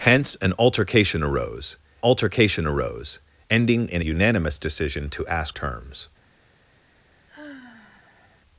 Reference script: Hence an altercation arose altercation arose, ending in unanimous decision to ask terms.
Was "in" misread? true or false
false